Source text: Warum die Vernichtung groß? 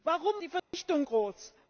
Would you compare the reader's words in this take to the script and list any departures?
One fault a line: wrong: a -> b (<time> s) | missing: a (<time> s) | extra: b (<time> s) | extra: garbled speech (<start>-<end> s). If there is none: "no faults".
no faults